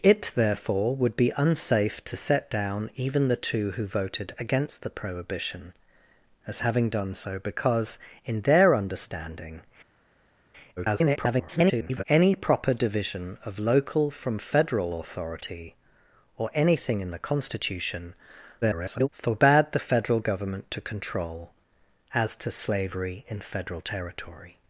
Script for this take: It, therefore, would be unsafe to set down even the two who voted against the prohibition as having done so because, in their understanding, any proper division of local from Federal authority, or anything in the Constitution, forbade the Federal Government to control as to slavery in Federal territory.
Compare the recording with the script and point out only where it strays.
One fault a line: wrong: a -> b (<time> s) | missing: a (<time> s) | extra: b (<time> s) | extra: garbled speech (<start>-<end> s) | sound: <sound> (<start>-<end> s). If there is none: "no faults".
extra: garbled speech (10.8-12.0 s)
extra: garbled speech (18.6-19.1 s)